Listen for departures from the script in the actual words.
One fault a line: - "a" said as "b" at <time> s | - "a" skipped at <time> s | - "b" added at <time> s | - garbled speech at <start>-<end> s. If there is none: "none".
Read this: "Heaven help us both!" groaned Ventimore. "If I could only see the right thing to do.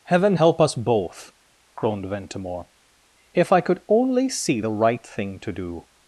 none